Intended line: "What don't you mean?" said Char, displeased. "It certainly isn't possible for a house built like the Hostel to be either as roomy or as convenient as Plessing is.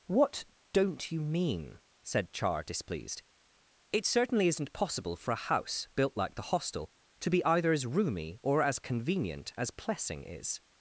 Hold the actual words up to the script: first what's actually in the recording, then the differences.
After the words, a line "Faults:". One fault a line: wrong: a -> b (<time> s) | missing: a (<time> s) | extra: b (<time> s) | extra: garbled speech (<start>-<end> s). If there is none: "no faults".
"What don't you mean?" said Char, displeased. "It certainly isn't possible for a house built like the Hostel to be either as roomy or as convenient as Plessing is.
Faults:
no faults